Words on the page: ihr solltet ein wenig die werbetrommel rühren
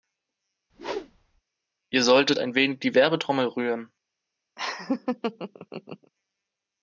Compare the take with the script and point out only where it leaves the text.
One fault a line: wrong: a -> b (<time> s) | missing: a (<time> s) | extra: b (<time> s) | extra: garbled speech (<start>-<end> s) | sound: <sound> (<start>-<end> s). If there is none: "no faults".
sound: whoosh (0.7-1.4 s)
sound: laugh (4.6-6.1 s)